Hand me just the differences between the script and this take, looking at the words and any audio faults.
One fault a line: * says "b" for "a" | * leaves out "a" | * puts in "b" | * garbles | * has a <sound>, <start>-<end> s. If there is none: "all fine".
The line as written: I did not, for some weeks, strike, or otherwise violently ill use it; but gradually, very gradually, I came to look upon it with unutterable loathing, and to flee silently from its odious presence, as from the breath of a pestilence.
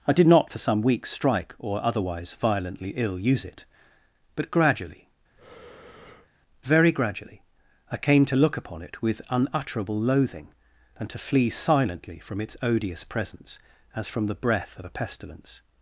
* has a breath, 5.4-6.3 s